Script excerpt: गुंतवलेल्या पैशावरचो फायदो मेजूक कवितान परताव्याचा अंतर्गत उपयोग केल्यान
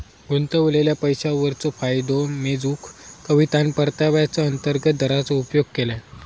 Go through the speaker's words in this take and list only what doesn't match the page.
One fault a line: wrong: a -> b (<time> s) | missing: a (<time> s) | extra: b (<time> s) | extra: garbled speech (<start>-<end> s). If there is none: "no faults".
extra: दराचो (5.0 s)